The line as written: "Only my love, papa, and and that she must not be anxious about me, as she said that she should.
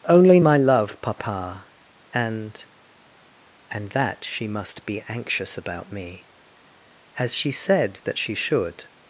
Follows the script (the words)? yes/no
no